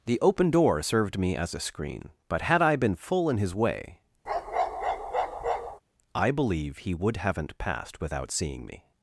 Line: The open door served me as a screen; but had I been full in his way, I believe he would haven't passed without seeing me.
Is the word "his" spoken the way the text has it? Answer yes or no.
yes